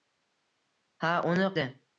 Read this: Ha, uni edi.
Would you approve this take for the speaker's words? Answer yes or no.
yes